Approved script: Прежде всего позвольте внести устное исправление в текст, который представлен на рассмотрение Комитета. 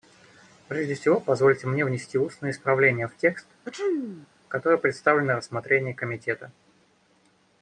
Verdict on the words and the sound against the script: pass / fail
fail